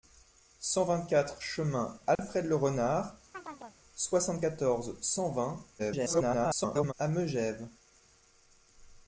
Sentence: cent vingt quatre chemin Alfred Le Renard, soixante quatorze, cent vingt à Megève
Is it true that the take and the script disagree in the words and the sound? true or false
true